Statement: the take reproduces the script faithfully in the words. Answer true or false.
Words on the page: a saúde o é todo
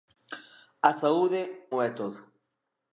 true